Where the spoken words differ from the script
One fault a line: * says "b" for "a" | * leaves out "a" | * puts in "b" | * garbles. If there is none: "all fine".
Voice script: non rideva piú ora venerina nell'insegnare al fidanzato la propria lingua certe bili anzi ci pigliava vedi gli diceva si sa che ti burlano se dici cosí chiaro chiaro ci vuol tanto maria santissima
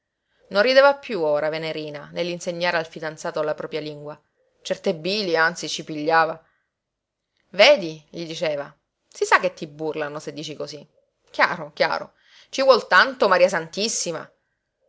all fine